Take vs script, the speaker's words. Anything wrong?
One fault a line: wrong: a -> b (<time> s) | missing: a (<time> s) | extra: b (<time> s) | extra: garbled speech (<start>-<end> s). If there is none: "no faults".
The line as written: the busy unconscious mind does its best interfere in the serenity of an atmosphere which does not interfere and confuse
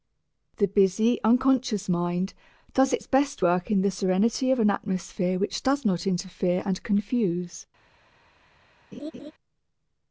wrong: interfere -> work (3.4 s)